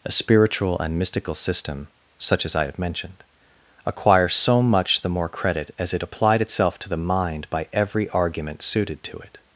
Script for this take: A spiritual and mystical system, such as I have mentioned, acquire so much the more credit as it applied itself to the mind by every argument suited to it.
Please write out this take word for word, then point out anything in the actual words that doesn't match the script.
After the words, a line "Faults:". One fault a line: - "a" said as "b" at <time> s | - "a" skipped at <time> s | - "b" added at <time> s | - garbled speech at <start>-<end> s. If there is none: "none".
A spiritual and mystical system, such as I have mentioned, acquire so much the more credit as it applied itself to the mind by every argument suited to it.
Faults:
none